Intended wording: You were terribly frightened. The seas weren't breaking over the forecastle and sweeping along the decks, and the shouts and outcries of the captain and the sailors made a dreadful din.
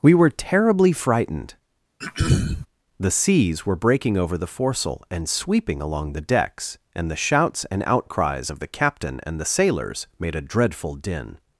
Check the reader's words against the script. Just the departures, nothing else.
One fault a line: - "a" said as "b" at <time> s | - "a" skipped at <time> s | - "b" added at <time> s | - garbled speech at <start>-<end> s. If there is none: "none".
- "You" said as "We" at 0.0 s
- "weren't" said as "were" at 3.6 s